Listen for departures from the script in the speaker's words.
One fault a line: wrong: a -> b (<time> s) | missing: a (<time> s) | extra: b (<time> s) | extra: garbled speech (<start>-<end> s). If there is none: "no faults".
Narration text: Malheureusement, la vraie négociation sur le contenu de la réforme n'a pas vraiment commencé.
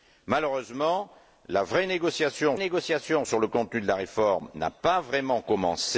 extra: négociation (2.6 s)